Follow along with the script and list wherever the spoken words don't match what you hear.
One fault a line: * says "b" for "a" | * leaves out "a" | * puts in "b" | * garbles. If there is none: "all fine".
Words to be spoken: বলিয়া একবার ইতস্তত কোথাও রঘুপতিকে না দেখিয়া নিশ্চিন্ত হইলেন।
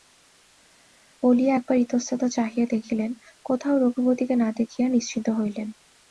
* puts in "চাহিয়া দেখিলেন"